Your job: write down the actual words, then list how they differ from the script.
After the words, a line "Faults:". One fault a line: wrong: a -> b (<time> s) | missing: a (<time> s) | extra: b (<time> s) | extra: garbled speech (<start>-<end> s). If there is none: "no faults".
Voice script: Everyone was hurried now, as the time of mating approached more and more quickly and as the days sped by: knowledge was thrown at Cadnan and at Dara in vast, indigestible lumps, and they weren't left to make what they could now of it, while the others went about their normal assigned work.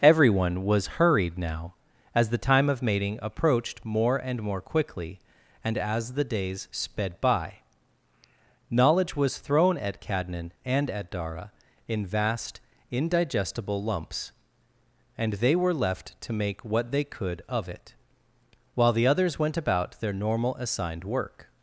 Everyone was hurried now, as the time of mating approached more and more quickly and as the days sped by: knowledge was thrown at Cadnan and at Dara in vast, indigestible lumps, and they were left to make what they could of it, while the others went about their normal assigned work.
Faults:
wrong: weren't -> were (15.6 s)
missing: now (17.4 s)